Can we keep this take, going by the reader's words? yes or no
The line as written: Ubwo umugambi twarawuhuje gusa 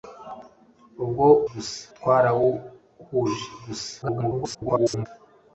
no